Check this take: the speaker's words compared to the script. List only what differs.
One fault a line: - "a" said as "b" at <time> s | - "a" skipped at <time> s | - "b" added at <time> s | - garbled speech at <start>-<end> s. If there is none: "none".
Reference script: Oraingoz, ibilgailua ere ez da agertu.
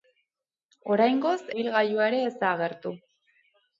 none